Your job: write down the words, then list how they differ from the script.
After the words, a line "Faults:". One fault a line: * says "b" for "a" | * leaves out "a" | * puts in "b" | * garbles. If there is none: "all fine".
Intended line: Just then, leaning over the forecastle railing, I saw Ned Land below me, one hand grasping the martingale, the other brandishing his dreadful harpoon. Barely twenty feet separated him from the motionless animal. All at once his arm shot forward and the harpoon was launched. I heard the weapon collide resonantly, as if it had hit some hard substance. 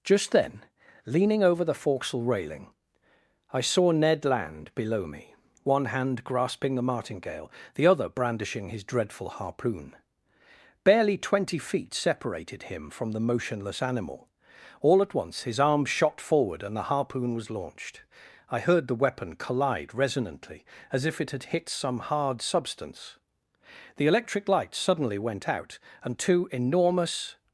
Just then, leaning over the forecastle railing, I saw Ned Land below me, one hand grasping the martingale, the other brandishing his dreadful harpoon. Barely twenty feet separated him from the motionless animal. All at once his arm shot forward and the harpoon was launched. I heard the weapon collide resonantly, as if it had hit some hard substance. The electric light suddenly went out, and two enormous
Faults:
* puts in "The electric light suddenly went out and two enormous"